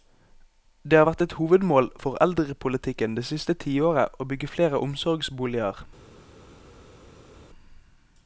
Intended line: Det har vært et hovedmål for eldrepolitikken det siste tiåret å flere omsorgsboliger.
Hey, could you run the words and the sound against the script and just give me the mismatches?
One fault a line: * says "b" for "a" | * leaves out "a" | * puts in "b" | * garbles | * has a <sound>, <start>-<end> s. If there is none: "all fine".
* puts in "bygge"